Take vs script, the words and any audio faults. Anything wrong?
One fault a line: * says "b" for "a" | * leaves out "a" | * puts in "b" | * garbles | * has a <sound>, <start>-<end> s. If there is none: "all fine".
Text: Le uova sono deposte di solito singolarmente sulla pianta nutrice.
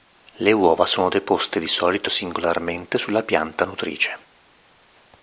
all fine